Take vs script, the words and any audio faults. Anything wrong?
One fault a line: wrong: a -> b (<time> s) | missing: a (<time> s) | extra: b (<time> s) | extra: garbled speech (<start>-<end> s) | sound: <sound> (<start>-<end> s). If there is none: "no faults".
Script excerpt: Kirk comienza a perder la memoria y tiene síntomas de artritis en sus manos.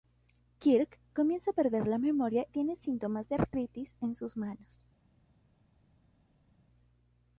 missing: y (2.5 s)